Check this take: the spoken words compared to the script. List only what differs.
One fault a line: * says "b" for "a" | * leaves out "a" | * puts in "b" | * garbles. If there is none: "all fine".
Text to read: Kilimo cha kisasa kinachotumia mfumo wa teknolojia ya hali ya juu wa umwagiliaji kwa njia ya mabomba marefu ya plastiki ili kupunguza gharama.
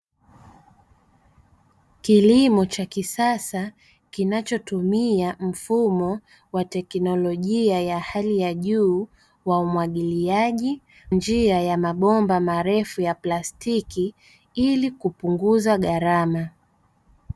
* leaves out "kwa"